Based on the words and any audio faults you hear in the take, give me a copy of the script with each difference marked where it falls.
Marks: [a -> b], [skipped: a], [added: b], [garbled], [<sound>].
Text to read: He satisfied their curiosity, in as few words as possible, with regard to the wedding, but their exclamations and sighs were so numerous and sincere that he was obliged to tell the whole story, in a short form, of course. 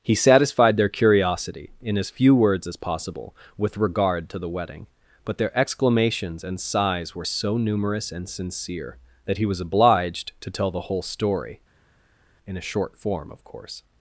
He satisfied their curiosity, in as few words as possible, with regard to the wedding, but their exclamations and sighs were so numerous and sincere that he was obliged to tell the whole story, in a short form, of course.